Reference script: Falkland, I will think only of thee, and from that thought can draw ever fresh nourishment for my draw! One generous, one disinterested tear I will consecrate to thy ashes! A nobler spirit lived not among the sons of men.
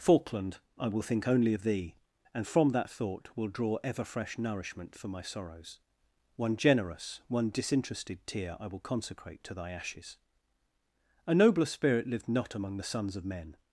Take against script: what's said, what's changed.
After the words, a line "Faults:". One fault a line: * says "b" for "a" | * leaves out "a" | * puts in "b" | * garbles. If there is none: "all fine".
Falkland, I will think only of thee, and from that thought will draw ever fresh nourishment for my sorrows! One generous, one disinterested tear I will consecrate to thy ashes! A nobler spirit lived not among the sons of men.
Faults:
* says "will" for "can"
* says "sorrows" for "draw"